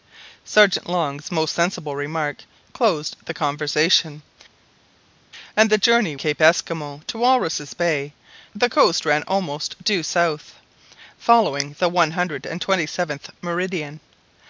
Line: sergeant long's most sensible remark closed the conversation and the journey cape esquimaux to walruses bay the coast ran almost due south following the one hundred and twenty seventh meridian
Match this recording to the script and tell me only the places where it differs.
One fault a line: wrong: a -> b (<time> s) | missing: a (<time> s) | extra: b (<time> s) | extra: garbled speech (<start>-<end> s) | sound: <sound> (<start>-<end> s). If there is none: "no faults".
no faults